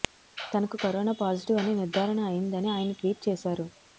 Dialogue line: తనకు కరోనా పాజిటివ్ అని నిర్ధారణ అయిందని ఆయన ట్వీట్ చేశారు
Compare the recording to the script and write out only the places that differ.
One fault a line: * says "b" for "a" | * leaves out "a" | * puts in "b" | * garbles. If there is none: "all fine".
all fine